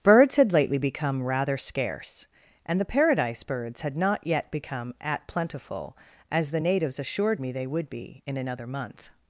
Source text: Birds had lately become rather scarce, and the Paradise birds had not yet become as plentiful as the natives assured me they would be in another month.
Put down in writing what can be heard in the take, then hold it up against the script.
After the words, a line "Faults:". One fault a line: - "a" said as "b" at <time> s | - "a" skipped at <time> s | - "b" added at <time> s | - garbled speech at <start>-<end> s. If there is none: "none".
Birds had lately become rather scarce, and the Paradise birds had not yet become at plentiful as the natives assured me they would be in another month.
Faults:
- "as" said as "at" at 5.0 s